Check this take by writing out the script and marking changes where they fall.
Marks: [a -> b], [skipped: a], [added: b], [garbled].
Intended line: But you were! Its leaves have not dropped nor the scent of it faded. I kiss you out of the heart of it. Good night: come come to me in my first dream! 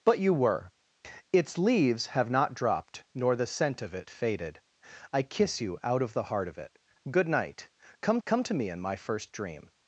But you were! Its leaves have not dropped nor the scent of it faded. I kiss you out of the heart of it. Good night: come come to me in my first dream!